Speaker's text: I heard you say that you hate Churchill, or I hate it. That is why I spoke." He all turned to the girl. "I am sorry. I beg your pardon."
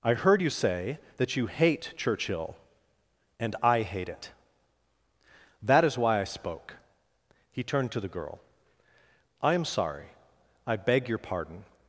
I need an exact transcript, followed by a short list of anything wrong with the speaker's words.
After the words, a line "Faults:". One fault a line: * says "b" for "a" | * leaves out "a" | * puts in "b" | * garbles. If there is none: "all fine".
I heard you say that you hate Churchill, and I hate it. That is why I spoke." He turned to the girl. "I am sorry. I beg your pardon."
Faults:
* says "and" for "or"
* leaves out "all"